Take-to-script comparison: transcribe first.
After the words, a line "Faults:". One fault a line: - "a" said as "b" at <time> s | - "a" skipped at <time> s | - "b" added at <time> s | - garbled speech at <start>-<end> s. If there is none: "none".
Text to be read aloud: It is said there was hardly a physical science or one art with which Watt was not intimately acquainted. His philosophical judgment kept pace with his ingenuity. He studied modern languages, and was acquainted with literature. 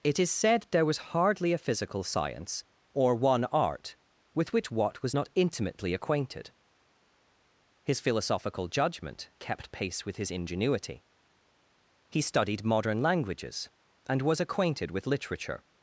It is said there was hardly a physical science or one art with which Watt was not intimately acquainted. His philosophical judgment kept pace with his ingenuity. He studied modern languages, and was acquainted with literature.
Faults:
none